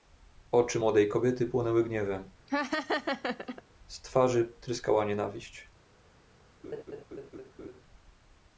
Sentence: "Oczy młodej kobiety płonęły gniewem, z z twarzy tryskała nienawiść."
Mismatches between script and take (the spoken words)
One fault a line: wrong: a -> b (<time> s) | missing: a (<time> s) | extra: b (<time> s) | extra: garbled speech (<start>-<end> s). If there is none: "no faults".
missing: z (4.0 s)